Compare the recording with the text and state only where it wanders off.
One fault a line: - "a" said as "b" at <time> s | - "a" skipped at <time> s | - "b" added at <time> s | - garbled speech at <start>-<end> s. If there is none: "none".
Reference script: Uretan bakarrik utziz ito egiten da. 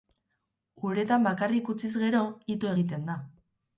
- "gero" added at 2.0 s